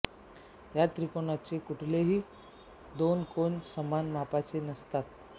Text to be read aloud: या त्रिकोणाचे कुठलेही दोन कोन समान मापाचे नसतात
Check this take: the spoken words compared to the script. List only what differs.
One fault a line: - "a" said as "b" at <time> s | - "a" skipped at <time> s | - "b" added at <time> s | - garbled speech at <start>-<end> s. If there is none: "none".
none